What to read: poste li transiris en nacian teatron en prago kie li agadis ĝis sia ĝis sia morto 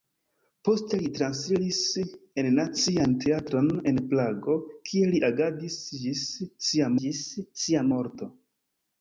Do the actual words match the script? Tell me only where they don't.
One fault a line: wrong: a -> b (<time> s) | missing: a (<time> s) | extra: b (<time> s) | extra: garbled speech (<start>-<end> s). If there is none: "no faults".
no faults